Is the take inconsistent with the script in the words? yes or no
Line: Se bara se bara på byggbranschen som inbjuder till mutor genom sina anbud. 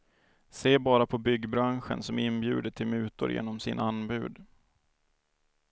yes